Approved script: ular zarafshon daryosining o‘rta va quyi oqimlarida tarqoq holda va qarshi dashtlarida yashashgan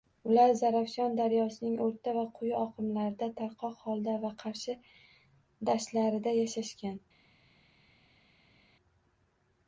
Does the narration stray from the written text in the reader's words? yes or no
no